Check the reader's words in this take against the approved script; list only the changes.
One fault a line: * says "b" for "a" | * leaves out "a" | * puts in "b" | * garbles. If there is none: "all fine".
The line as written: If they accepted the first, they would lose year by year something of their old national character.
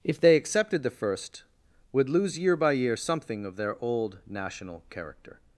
* leaves out "they"